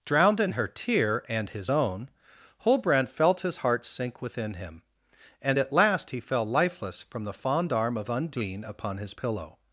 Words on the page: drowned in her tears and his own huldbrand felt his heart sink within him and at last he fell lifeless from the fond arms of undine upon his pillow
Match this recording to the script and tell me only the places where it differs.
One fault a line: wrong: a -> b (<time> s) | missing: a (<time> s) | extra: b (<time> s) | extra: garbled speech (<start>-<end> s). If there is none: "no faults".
wrong: tears -> tear (0.7 s)
wrong: arms -> arm (7.7 s)